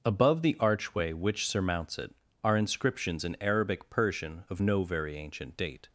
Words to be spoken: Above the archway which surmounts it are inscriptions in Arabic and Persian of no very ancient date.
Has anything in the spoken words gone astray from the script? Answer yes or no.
yes